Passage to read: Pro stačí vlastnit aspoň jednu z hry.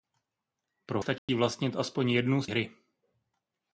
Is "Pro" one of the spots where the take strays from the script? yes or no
no